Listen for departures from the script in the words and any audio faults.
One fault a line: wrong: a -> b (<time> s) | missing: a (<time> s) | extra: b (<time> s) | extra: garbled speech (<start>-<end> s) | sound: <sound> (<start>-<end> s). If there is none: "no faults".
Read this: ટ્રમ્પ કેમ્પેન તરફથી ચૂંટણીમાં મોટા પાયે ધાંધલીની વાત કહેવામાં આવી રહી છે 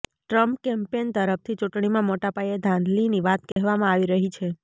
sound: dropout (3.5-3.6 s)